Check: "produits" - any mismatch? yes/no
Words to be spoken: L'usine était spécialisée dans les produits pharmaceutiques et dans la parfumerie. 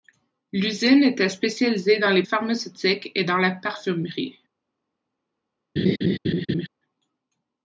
yes